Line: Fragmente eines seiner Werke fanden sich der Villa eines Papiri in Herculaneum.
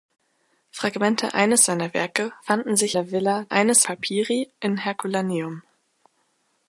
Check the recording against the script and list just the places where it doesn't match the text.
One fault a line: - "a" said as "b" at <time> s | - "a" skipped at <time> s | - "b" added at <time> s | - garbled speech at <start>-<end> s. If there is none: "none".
none